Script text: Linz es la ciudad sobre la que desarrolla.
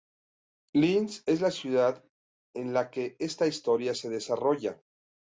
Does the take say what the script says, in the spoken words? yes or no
no